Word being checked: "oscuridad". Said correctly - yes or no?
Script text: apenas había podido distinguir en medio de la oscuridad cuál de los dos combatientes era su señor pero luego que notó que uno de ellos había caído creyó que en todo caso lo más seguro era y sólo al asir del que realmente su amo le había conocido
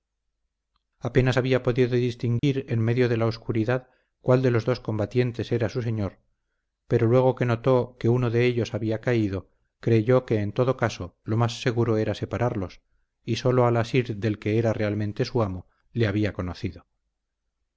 yes